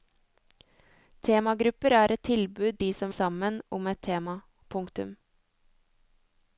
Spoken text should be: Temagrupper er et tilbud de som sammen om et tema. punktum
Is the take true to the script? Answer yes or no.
yes